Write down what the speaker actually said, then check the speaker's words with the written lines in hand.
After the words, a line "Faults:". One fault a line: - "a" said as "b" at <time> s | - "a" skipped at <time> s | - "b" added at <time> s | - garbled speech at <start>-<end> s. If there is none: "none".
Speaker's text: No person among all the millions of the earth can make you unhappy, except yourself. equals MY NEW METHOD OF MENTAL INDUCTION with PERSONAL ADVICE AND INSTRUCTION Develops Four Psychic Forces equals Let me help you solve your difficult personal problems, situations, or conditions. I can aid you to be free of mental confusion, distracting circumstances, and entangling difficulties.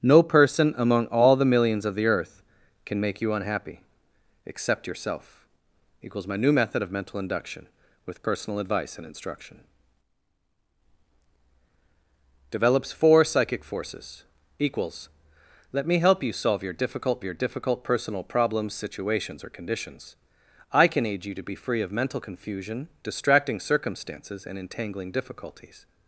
No person among all the millions of the earth can make you unhappy, except yourself. equals MY NEW METHOD OF MENTAL INDUCTION with PERSONAL ADVICE AND INSTRUCTION Develops Four Psychic Forces equals Let me help you solve your difficult your difficult personal problems, situations, or conditions. I can aid you to be free of mental confusion, distracting circumstances, and entangling difficulties.
Faults:
- "your difficult" added at 17.2 s